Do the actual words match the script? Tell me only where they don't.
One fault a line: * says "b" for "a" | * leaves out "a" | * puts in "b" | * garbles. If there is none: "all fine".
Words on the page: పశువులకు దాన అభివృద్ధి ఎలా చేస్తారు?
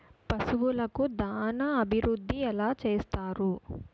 all fine